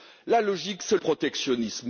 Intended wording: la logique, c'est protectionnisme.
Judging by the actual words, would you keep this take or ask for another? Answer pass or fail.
pass